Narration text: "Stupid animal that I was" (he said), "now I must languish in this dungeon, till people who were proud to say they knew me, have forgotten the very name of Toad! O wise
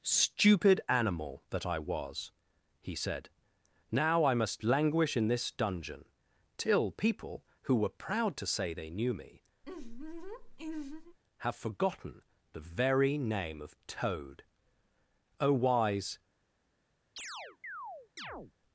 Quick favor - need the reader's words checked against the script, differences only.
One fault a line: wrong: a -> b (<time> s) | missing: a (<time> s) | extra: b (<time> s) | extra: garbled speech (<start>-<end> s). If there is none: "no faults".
no faults